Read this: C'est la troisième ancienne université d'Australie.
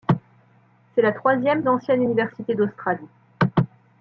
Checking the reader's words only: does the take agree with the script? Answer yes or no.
yes